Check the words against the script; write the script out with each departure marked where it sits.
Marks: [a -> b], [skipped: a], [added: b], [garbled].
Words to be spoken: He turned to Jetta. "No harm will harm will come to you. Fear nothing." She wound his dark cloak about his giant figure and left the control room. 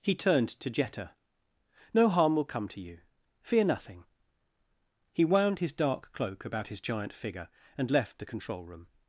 He turned to Jetta. "No harm will [skipped: harm will] come to you. Fear nothing." [She -> He] wound his dark cloak about his giant figure and left the control room.